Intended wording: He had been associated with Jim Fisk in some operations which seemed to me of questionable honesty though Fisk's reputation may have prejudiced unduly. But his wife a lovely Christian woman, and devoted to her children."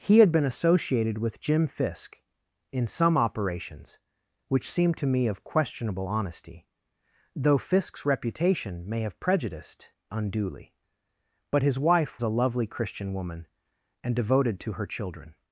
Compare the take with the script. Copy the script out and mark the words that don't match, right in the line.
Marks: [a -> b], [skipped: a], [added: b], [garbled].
He had been associated with Jim Fisk in some operations which seemed to me of questionable honesty though Fisk's reputation may have prejudiced unduly. But his wife a lovely Christian woman, and devoted to her children."